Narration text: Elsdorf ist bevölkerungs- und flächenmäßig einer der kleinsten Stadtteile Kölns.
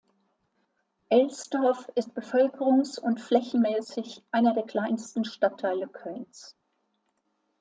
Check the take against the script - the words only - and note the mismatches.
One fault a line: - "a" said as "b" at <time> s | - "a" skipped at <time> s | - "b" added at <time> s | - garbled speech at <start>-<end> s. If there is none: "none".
none